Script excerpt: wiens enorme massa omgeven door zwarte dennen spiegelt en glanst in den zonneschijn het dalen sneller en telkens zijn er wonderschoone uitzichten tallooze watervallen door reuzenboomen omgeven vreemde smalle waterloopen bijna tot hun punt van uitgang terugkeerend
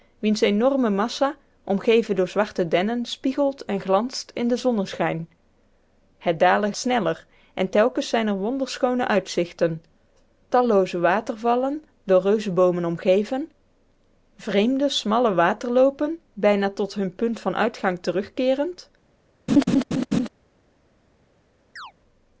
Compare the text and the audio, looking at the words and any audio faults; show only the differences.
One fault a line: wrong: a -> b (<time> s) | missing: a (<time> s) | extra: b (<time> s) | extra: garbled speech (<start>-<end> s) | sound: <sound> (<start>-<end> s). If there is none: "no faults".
sound: laugh (19.5-20.3 s)
sound: chirp (21.8-21.9 s)